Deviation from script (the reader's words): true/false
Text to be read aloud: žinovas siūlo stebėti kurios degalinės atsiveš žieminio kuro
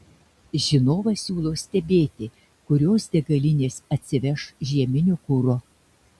false